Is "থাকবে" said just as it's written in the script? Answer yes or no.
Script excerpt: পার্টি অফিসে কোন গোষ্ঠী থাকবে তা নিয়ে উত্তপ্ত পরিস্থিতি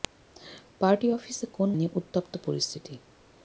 no